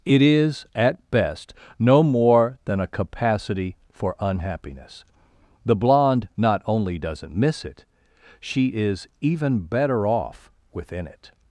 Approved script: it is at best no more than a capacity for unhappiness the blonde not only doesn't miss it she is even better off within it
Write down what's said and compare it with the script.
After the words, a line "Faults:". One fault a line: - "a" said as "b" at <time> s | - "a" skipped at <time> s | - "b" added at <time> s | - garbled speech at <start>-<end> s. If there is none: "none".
it is at best no more than a capacity for unhappiness the blonde not only doesn't miss it she is even better off within it
Faults:
none